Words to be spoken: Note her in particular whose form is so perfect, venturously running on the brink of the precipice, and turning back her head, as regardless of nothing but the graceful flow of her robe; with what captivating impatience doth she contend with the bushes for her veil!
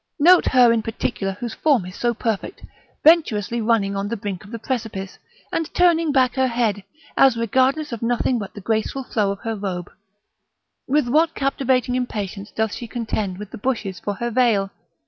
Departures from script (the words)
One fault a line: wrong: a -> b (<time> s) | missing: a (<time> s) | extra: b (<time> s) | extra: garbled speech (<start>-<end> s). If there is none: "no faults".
no faults